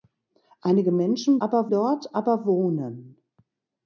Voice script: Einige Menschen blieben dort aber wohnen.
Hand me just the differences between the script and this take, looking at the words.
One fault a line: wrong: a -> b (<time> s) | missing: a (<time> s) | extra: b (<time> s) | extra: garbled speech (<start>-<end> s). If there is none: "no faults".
wrong: blieben -> aber (1.4 s)